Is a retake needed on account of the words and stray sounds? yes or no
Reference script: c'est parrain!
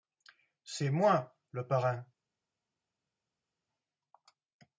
yes